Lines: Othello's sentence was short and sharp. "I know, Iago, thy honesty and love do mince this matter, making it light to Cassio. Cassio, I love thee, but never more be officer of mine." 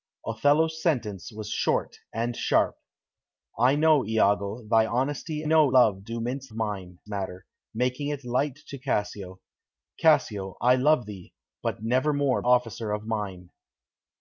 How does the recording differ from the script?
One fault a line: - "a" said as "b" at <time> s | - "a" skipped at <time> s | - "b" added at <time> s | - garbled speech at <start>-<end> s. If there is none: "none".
- "and" said as "know" at 5.4 s
- "this" said as "mine" at 6.5 s
- "be" skipped at 12.4 s